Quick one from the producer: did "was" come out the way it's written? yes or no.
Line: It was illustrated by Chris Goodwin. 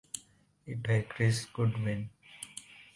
no